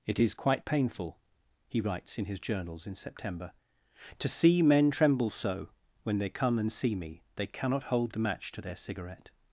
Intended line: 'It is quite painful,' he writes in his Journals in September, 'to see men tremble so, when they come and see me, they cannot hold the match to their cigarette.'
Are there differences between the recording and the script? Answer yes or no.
no